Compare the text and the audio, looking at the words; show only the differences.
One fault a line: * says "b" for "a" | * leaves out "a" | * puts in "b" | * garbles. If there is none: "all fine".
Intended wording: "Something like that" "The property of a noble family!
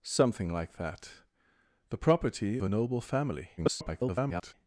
* leaves out "of"
* garbles